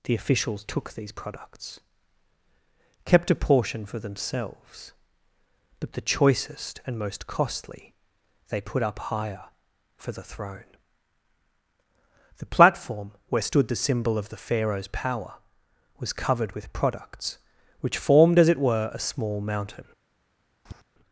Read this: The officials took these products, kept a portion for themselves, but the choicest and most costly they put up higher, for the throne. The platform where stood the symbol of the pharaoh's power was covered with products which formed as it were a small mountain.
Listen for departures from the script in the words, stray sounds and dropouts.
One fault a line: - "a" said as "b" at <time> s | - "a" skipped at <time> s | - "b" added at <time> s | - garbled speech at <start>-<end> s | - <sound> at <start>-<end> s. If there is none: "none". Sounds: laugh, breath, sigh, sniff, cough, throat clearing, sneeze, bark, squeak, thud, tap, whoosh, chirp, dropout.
- tap at 20.7-20.8 s